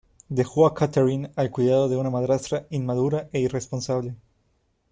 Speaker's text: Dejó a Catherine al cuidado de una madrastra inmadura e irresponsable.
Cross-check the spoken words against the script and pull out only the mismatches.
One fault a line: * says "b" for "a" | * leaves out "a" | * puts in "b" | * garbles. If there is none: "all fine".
all fine